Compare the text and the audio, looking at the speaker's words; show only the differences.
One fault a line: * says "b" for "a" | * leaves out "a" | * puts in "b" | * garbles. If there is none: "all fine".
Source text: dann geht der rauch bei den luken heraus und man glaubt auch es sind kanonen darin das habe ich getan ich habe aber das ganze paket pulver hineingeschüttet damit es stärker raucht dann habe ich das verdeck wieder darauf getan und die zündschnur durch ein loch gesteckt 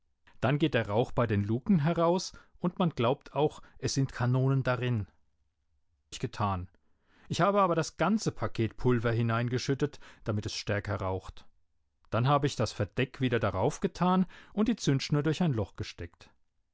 * leaves out "das habe"